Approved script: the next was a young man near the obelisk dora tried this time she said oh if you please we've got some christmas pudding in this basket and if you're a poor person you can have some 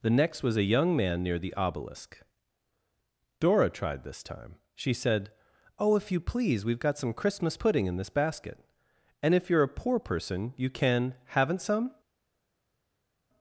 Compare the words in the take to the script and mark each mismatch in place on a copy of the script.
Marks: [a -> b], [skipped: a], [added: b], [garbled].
the next was a young man near the obelisk dora tried this time she said oh if you please we've got some christmas pudding in this basket and if you're a poor person you can [have -> haven't] some